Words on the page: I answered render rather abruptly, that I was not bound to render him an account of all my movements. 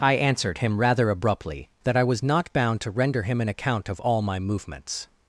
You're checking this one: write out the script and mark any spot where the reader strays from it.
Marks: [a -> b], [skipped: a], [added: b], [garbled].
I answered [render -> him] rather abruptly, that I was not bound to render him an account of all my movements.